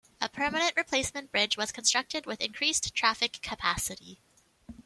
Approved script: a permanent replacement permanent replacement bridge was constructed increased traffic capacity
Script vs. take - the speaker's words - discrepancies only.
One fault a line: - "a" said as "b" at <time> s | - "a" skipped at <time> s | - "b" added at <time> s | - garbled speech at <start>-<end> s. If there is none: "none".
- "permanent replacement" skipped at 1.3 s
- "with" added at 2.2 s